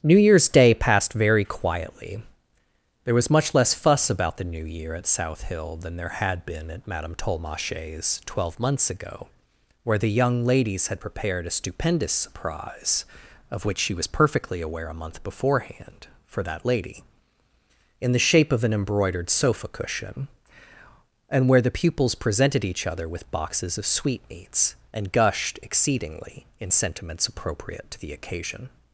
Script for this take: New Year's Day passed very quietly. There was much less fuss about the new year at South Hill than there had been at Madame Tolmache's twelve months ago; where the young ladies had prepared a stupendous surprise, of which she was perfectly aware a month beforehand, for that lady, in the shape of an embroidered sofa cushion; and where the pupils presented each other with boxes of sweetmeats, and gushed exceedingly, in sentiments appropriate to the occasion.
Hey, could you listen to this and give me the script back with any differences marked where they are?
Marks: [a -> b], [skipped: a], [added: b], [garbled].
New Year's Day passed very quietly. There was much less fuss about the new year at South Hill than there had been at Madame Tolmache's twelve months ago; where the young ladies had prepared a stupendous surprise, of which she was perfectly aware a month beforehand, for that lady, in the shape of an embroidered sofa cushion; and where the pupils presented each other with boxes of sweetmeats, and gushed exceedingly, in sentiments appropriate to the occasion.